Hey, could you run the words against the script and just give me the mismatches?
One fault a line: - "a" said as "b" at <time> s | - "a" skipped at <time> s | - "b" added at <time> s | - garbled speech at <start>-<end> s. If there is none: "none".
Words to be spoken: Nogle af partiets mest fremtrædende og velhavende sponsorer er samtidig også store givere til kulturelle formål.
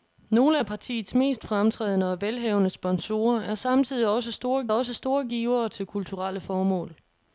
- "også store" added at 4.7 s